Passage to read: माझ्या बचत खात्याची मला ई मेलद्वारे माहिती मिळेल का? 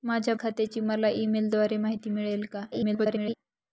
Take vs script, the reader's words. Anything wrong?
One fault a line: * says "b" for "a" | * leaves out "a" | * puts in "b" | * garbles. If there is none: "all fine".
* leaves out "बचत"
* garbles